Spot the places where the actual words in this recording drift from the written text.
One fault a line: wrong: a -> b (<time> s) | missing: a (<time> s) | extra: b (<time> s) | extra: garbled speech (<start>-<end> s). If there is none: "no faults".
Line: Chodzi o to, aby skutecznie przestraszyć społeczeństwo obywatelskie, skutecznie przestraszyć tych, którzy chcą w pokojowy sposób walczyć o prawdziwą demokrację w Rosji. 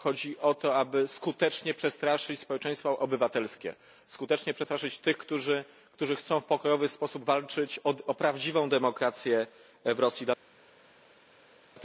no faults